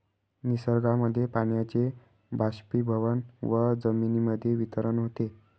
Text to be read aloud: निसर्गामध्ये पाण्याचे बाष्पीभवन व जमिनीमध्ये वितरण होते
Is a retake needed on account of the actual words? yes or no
no